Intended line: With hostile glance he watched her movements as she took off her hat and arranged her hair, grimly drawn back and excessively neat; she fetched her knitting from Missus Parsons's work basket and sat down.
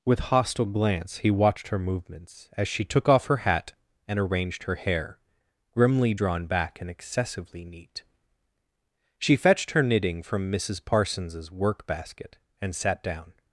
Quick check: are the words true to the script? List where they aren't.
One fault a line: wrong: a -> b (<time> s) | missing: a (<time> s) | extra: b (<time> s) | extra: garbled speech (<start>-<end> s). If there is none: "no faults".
no faults